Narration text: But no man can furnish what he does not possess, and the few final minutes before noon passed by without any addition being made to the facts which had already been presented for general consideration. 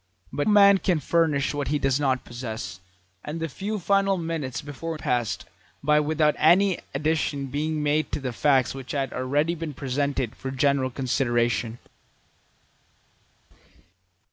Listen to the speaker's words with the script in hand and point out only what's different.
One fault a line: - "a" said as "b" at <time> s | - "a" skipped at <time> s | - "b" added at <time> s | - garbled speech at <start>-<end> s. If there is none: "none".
- "no" skipped at 0.5 s
- "noon" skipped at 5.0 s